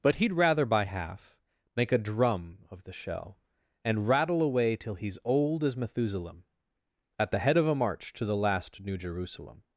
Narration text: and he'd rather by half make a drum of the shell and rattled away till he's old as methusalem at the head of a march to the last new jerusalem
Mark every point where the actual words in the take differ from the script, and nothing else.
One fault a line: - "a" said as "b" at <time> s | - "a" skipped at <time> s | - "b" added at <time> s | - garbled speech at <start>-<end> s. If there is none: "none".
- "and" said as "but" at 0.0 s
- "rattled" said as "rattle" at 4.1 s